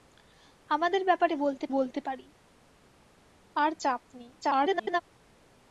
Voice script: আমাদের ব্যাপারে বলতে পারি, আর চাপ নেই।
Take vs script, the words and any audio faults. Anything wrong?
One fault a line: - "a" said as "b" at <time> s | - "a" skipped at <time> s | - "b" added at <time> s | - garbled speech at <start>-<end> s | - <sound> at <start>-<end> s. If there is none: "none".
- "বলতে" added at 1.7 s
- garbled speech at 4.4-5.0 s